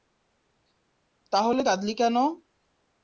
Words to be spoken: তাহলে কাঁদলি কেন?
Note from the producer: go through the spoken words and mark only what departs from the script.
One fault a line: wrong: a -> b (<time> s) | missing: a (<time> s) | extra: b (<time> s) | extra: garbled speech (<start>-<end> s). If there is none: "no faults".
no faults